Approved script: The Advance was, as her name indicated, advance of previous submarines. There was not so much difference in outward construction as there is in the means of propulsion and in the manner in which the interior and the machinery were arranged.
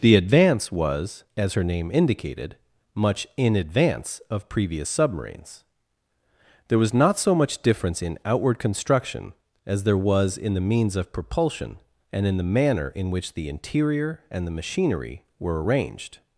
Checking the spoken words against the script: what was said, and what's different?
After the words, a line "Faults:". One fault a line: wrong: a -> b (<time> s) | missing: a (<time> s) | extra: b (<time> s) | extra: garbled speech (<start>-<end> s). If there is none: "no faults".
The Advance was, as her name indicated, much in advance of previous submarines. There was not so much difference in outward construction as there was in the means of propulsion and in the manner in which the interior and the machinery were arranged.
Faults:
extra: much in (2.9 s)
wrong: is -> was (10.0 s)